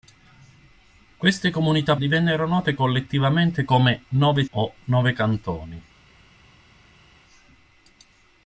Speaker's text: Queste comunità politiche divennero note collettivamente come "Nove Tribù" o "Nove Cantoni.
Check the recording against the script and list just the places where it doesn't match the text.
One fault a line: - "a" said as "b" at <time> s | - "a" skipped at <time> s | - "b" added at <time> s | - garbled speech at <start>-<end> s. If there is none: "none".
- "politiche" skipped at 1.9 s
- "Tribù" skipped at 4.4 s